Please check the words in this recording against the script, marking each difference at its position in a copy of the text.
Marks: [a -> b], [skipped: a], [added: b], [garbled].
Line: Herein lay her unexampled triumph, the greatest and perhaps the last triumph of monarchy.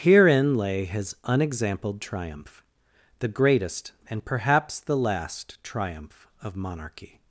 Herein lay [her -> his] unexampled triumph, the greatest and perhaps the last triumph of monarchy.